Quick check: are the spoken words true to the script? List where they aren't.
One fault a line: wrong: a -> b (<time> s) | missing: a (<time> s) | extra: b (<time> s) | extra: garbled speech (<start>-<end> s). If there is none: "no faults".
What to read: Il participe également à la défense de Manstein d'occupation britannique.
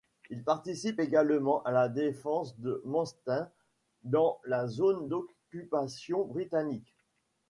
extra: dans la zone (4.0 s)